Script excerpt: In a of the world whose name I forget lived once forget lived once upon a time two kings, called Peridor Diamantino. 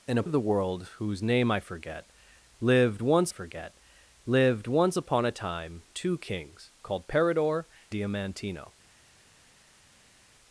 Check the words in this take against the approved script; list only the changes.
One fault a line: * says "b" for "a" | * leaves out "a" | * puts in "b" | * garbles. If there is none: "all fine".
all fine